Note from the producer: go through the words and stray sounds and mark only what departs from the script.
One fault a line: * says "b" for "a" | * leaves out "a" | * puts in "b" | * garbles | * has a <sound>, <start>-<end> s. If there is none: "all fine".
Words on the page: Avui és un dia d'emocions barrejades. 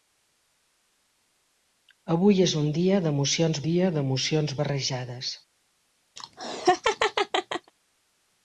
* puts in "dia d'emocions"
* has a laugh, 6.2-7.7 s